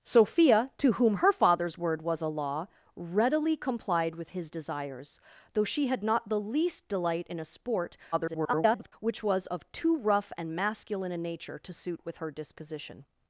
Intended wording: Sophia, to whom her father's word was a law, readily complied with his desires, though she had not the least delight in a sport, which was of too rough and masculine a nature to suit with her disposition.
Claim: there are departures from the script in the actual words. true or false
true